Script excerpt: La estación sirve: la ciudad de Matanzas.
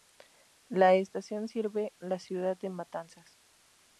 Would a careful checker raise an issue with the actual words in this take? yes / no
no